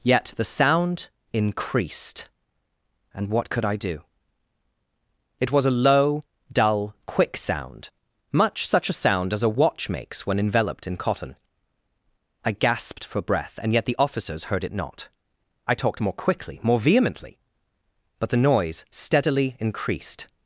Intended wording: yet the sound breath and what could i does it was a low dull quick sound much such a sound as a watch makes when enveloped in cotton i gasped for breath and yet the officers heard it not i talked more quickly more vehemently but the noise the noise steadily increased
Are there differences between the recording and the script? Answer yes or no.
yes